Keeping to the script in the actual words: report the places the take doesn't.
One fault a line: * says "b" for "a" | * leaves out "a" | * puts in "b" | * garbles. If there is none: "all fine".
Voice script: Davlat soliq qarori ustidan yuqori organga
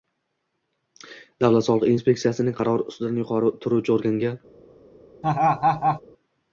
* puts in "inspeksiyasining"
* puts in "turuvchi"